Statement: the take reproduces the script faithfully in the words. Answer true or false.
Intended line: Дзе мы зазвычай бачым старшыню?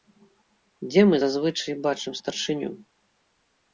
true